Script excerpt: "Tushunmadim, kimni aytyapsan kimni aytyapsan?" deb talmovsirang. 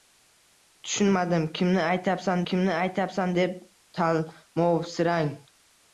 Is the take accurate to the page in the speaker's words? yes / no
yes